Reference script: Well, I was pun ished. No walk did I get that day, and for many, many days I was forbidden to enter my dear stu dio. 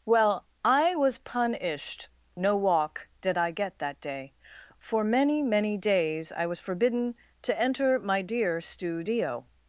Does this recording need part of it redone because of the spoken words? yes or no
yes